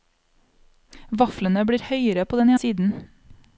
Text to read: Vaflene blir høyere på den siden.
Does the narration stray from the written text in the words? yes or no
no